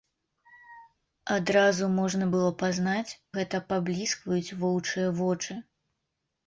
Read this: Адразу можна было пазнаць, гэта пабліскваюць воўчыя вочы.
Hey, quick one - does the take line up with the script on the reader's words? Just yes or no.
yes